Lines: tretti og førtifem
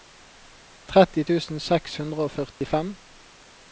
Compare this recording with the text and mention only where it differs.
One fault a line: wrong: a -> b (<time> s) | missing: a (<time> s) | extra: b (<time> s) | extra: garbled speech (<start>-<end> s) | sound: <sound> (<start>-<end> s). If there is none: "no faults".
extra: tusen seks hundre (1.3 s)
sound: dropout (2.5-2.6 s)